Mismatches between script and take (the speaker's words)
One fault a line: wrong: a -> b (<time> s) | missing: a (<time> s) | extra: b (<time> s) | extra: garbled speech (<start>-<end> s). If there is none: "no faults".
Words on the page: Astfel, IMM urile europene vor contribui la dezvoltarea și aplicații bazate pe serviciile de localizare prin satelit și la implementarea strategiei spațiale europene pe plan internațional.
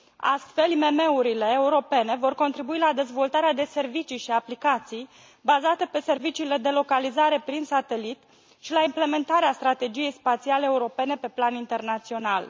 extra: de servicii (3.5 s)